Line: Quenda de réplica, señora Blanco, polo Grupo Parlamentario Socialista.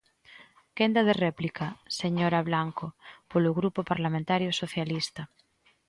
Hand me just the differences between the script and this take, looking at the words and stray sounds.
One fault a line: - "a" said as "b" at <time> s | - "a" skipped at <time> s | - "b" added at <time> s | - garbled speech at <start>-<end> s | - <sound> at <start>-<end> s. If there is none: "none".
none